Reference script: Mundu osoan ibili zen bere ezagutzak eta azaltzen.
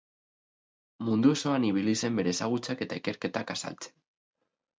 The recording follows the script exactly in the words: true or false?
false